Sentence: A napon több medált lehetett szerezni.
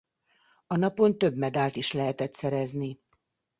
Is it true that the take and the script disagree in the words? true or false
true